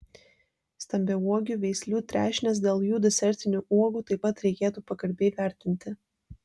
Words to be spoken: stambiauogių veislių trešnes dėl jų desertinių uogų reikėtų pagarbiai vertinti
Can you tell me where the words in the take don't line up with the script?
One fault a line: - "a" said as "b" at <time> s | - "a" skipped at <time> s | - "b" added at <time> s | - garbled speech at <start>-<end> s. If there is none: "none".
- "taip pat" added at 4.1 s